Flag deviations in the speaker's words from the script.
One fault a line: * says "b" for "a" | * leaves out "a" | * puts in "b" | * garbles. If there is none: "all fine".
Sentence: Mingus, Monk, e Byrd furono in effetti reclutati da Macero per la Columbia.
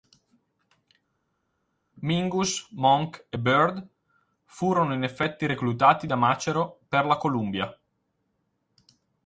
all fine